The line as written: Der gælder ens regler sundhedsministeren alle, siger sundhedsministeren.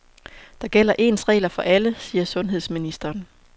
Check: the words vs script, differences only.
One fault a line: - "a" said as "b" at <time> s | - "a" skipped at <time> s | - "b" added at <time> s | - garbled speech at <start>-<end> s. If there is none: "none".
- "sundhedsministeren" said as "for" at 1.5 s